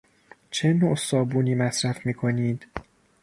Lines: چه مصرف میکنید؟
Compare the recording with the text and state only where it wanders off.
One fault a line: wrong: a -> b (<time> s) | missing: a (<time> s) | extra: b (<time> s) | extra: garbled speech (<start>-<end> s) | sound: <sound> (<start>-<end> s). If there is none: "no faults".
extra: نوع صابونی (0.7 s)